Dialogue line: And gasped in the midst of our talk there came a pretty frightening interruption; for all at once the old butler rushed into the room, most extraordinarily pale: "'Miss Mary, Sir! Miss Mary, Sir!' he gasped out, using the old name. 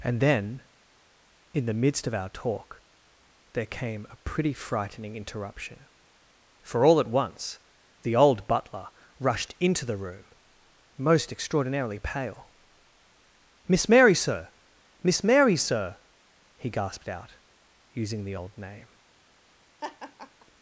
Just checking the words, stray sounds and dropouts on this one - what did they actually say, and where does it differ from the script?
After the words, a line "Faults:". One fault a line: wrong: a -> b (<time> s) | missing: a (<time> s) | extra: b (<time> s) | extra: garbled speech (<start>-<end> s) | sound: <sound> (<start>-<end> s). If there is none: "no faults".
And then in the midst of our talk there came a pretty frightening interruption; for all at once the old butler rushed into the room, most extraordinarily pale: "'Miss Mary, Sir! Miss Mary, Sir!' he gasped out, using the old name.
Faults:
wrong: gasped -> then (0.2 s)
sound: laugh (19.8-20.5 s)